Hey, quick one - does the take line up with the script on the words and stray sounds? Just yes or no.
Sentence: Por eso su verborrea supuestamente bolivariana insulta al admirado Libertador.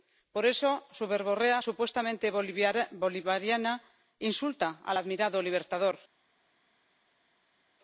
yes